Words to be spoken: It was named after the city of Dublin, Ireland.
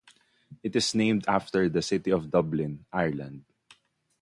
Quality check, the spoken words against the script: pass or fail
fail